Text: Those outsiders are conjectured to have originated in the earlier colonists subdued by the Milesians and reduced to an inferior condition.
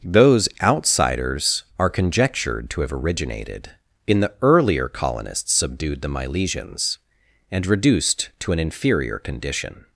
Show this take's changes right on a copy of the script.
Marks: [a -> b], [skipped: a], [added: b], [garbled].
Those outsiders are conjectured to have originated in the earlier colonists subdued [skipped: by] the Milesians and reduced to an inferior condition.